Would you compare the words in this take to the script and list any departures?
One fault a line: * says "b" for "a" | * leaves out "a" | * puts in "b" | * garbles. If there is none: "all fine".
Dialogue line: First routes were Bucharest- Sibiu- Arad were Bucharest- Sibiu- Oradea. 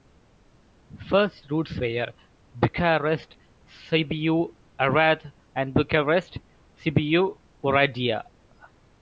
* says "and" for "were"